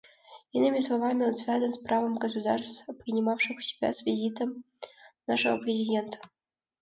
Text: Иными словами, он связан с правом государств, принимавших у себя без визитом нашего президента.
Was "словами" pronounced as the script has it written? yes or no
yes